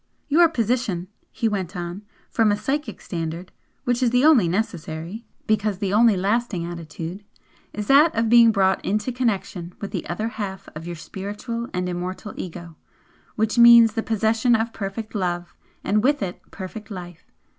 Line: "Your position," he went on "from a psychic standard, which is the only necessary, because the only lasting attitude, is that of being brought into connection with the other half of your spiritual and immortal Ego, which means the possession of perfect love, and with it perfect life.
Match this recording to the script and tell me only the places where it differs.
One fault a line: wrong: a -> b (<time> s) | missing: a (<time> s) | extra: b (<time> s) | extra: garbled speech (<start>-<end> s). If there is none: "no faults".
no faults